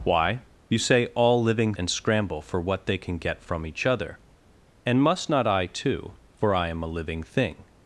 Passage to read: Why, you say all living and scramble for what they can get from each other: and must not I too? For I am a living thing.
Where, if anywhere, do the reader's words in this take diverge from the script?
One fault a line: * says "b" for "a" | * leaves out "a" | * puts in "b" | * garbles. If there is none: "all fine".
all fine